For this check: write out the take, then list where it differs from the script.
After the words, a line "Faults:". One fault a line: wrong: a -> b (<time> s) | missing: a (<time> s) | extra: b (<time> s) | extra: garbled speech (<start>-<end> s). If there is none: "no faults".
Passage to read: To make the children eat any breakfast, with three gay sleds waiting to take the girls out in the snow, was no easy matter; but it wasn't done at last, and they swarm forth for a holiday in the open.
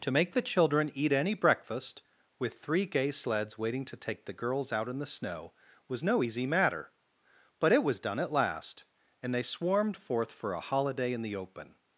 To make the children eat any breakfast, with three gay sleds waiting to take the girls out in the snow, was no easy matter; but it was done at last, and they swarmed forth for a holiday in the open.
Faults:
wrong: wasn't -> was (7.8 s)
wrong: swarm -> swarmed (9.4 s)